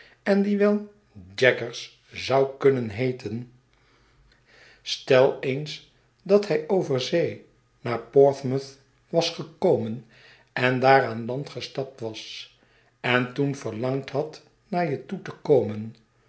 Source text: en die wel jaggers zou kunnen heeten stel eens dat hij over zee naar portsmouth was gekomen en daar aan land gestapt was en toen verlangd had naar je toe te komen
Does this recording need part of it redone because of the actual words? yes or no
no